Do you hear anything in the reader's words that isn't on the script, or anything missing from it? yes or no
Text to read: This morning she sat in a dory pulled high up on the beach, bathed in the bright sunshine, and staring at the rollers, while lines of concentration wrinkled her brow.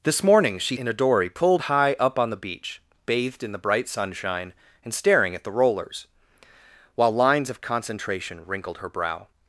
yes